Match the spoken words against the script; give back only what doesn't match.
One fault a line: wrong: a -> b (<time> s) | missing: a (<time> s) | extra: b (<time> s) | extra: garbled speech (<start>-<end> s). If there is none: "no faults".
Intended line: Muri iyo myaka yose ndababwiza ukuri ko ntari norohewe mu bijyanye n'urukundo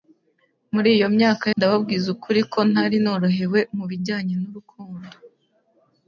missing: yose (1.4 s)